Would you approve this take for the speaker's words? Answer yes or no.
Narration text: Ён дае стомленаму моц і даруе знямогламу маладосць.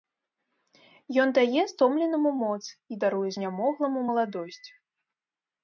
yes